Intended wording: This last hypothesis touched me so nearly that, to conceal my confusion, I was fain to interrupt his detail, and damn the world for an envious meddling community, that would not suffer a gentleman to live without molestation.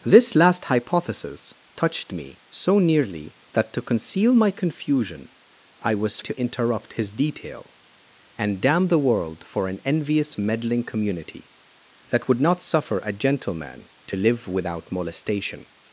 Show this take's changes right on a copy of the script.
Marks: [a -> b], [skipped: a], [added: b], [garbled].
This last hypothesis touched me so nearly that, to conceal my confusion, I was [skipped: fain] to interrupt his detail, and damn the world for an envious meddling community, that would not suffer a gentleman to live without molestation.